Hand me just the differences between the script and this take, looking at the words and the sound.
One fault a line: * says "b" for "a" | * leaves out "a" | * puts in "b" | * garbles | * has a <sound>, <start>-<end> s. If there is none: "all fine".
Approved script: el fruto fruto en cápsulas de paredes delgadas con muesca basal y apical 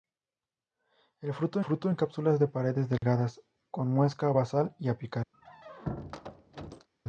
* has a dropout, 3.0-3.0 s
* has a squeak, 5.3-6.9 s